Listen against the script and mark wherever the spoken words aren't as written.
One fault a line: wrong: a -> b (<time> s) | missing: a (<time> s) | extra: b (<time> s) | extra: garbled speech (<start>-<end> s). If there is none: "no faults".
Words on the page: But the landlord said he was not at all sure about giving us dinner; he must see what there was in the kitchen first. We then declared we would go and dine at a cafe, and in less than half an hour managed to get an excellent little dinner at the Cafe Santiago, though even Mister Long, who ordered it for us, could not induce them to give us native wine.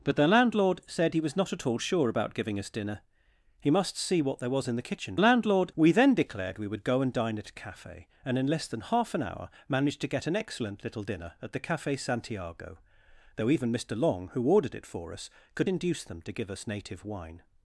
wrong: first -> landlord (5.2 s)
missing: not (15.7 s)